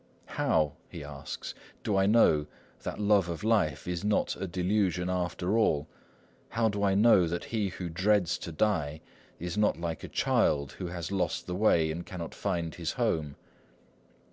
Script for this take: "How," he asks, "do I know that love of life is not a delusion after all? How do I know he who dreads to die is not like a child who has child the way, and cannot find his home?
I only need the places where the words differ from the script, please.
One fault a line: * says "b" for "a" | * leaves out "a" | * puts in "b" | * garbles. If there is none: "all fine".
* puts in "that"
* says "lost" for "child"